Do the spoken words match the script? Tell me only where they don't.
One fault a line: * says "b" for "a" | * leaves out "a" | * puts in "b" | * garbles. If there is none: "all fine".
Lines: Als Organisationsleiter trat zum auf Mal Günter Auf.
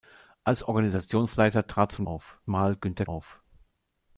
all fine